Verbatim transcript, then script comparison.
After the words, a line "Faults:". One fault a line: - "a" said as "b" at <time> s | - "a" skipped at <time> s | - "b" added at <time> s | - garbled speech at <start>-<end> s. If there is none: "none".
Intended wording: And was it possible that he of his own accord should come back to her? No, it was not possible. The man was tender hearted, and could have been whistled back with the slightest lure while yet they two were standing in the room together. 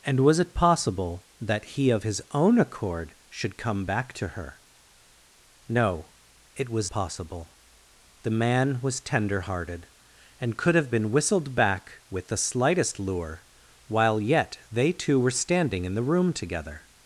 And was it possible that he of his own accord should come back to her? No, it was possible. The man was tender hearted, and could have been whistled back with the slightest lure while yet they two were standing in the room together.
Faults:
- "not" skipped at 6.9 s